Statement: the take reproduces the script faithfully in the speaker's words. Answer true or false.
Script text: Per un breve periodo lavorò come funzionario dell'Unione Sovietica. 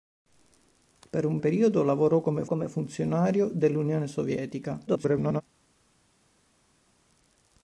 false